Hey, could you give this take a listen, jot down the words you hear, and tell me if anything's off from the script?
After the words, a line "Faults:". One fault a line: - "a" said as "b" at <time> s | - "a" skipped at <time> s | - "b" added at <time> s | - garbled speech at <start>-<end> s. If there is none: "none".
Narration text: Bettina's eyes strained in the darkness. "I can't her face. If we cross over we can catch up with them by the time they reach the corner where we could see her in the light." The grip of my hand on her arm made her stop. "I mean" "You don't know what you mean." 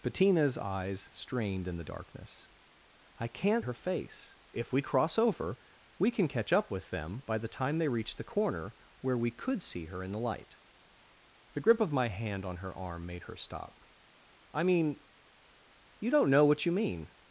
Bettina's eyes strained in the darkness. "I can't her face. If we cross over we can catch up with them by the time they reach the corner where we could see her in the light." The grip of my hand on her arm made her stop. "I mean" "You don't know what you mean."
Faults:
none